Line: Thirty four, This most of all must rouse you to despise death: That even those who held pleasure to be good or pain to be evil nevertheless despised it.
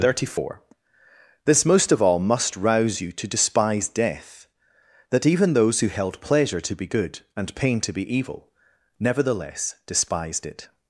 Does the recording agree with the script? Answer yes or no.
no